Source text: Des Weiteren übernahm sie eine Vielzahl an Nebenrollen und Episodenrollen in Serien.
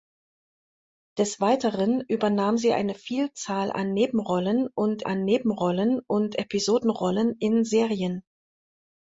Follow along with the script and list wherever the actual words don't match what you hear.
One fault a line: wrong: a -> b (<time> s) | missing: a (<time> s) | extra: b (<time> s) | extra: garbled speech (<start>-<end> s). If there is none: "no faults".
extra: an Nebenrollen und (5.0 s)